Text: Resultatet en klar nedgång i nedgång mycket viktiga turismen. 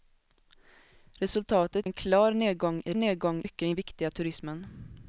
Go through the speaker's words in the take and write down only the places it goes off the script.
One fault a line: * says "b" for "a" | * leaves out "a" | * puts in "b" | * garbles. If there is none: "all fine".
all fine